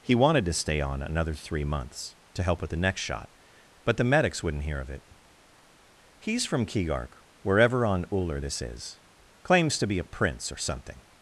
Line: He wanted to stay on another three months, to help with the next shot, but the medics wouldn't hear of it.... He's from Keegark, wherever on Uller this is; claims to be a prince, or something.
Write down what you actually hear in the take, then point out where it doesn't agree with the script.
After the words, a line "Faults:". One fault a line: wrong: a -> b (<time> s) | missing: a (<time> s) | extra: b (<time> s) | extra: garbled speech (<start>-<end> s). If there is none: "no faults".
He wanted to stay on another three months, to help with the next shot, but the medics wouldn't hear of it.... He's from Keegark, wherever on Uller this is; claims to be a prince, or something.
Faults:
no faults